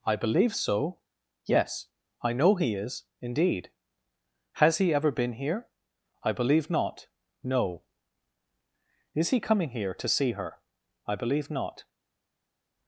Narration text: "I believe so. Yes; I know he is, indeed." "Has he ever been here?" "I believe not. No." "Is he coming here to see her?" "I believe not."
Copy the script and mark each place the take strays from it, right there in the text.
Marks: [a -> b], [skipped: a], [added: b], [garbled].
"I believe so. Yes; I know he is, indeed." "Has he ever been here?" "I believe not. No." "Is he coming here to see her?" "I believe not."